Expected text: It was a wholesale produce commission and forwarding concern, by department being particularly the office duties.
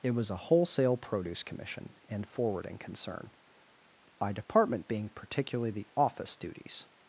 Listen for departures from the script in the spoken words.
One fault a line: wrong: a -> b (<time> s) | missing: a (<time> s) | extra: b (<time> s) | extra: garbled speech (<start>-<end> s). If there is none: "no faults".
no faults